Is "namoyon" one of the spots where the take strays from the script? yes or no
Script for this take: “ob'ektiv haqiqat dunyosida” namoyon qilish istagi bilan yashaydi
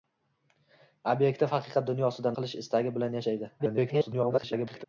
yes